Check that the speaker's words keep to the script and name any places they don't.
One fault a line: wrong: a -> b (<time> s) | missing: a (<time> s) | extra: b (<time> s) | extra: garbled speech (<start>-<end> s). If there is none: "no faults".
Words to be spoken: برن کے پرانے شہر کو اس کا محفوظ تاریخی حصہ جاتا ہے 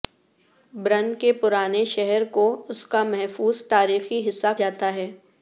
no faults